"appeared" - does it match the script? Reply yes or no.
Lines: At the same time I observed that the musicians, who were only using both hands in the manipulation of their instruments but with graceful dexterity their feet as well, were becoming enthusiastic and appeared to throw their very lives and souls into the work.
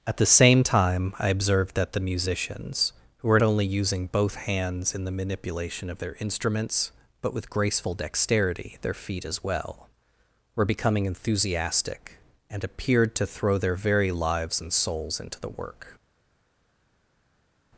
yes